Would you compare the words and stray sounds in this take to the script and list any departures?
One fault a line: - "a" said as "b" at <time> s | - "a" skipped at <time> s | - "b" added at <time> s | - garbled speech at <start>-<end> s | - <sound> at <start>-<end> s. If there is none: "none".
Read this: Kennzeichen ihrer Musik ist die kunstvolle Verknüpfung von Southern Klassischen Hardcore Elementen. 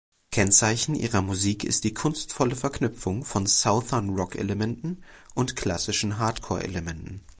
- "Rock Elementen und" added at 4.1 s